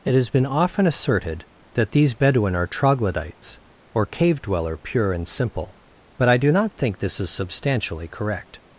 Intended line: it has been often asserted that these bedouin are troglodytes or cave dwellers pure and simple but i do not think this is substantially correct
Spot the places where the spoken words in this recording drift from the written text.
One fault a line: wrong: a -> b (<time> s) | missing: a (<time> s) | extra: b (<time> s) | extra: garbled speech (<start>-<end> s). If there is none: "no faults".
wrong: dwellers -> dweller (4.4 s)